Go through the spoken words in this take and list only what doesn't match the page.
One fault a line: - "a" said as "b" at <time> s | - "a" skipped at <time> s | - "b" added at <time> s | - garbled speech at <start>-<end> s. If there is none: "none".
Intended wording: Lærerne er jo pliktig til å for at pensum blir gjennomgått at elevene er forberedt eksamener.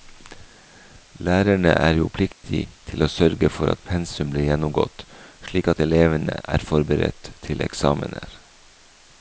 - "sørge" added at 3.1 s
- "slik" added at 5.5 s
- "til" added at 7.5 s